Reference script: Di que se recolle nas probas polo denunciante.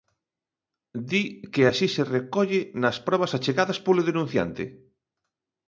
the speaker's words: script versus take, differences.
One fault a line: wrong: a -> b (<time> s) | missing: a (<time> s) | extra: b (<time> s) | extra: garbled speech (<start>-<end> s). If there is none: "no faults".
extra: así (1.7 s)
extra: achegadas (3.4 s)